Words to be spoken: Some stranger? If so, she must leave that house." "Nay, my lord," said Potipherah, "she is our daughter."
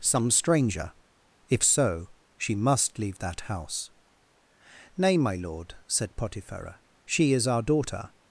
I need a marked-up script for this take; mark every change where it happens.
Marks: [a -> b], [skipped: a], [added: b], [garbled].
Some stranger? If so, she must leave that house." "Nay, my lord," said Potipherah, "she is our daughter."